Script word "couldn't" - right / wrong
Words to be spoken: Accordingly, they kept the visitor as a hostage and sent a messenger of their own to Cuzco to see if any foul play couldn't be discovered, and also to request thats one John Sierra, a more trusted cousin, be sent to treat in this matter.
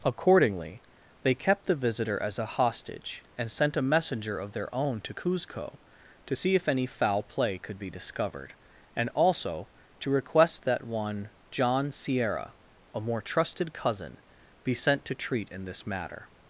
wrong